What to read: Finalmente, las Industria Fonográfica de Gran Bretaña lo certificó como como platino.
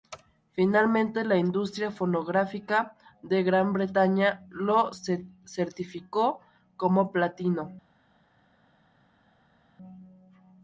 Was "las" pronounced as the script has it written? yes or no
no